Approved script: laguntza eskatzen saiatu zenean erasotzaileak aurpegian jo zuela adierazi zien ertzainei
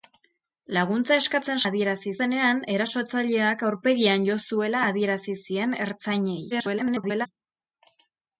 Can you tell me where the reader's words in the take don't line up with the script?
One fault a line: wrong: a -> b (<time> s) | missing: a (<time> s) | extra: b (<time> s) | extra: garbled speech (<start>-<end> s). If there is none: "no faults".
wrong: saiatu -> adierazi (1.7 s)
extra: garbled speech (6.5-7.3 s)